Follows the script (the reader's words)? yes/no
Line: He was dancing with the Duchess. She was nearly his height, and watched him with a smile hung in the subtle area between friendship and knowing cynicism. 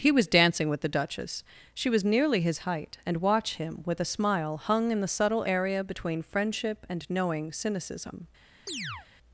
no